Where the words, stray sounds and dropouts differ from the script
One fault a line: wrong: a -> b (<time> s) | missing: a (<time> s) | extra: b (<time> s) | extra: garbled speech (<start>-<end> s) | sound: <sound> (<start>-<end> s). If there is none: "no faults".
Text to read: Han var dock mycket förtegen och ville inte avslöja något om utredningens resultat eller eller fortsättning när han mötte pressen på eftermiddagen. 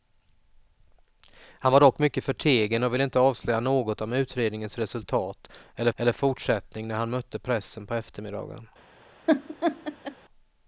sound: laugh (9.3-10.2 s)